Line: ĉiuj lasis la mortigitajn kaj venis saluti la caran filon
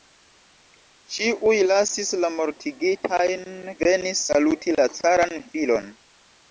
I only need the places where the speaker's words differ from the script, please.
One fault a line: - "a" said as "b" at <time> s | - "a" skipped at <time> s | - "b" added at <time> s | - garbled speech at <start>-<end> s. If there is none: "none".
- "kaj" skipped at 3.5 s